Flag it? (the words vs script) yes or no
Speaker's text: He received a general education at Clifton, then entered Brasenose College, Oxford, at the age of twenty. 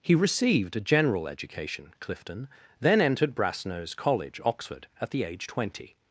yes